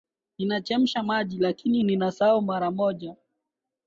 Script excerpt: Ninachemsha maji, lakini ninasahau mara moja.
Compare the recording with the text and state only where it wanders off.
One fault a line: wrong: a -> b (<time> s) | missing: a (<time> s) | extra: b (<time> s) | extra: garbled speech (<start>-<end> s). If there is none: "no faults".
no faults